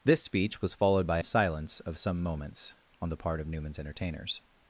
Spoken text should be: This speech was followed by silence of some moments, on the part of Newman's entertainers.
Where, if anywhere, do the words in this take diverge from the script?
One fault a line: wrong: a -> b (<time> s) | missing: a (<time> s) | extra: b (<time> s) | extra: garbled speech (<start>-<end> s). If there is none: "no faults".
no faults